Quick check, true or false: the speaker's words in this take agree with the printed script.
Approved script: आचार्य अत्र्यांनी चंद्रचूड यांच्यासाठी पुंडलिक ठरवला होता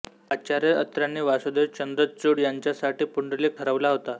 false